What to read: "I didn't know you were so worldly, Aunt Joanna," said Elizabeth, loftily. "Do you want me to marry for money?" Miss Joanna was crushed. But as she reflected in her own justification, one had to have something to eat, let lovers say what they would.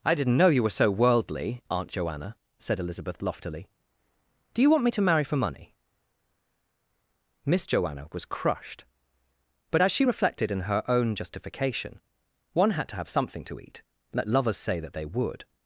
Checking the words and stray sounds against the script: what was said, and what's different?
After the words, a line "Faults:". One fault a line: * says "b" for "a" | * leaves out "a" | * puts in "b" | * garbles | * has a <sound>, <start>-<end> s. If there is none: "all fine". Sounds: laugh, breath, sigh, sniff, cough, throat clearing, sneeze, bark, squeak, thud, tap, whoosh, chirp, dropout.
"I didn't know you were so worldly, Aunt Joanna," said Elizabeth, loftily. "Do you want me to marry for money?" Miss Joanna was crushed. But as she reflected in her own justification, one had to have something to eat, let lovers say that they would.
Faults:
* says "that" for "what"